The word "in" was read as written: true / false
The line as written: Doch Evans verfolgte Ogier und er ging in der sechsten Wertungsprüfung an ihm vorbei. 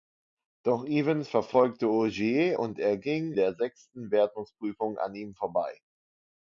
false